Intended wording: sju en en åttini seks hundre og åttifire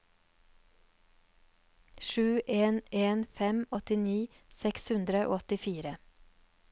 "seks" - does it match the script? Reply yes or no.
yes